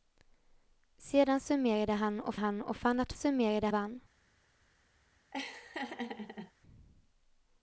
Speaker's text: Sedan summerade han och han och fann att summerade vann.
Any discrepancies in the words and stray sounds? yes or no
yes